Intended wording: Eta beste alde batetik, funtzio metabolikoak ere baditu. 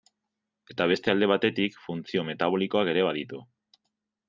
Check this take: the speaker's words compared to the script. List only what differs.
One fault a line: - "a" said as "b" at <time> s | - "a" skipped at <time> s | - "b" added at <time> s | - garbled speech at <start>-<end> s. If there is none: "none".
none